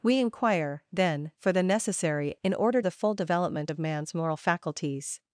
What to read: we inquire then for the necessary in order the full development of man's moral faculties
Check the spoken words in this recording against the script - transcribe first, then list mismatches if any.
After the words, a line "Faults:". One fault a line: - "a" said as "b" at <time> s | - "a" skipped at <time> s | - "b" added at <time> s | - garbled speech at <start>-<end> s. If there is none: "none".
we inquire then for the necessary in order the full development of man's moral faculties
Faults:
none